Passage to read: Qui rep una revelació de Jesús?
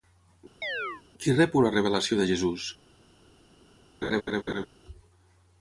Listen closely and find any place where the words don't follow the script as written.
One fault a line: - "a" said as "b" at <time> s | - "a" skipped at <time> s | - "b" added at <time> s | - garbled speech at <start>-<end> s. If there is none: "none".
none